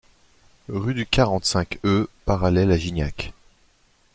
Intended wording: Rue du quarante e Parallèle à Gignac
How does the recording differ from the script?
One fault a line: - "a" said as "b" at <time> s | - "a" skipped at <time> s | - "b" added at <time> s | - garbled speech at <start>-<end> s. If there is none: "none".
- "cinq" added at 1.4 s